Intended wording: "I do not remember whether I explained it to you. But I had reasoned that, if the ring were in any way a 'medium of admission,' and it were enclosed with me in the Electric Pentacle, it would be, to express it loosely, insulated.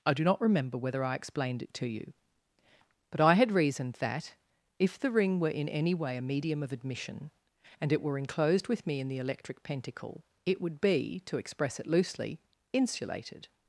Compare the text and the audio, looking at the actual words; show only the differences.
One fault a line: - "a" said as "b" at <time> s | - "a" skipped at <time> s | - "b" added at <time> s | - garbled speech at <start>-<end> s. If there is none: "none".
none